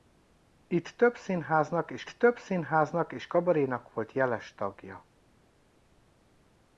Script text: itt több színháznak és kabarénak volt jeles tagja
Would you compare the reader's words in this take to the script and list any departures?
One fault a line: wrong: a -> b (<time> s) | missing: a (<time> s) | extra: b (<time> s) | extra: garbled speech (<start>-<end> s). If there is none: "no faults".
extra: több színháznak és (2.1 s)